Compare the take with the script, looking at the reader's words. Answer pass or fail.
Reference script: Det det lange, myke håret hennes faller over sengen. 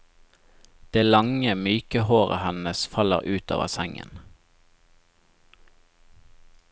fail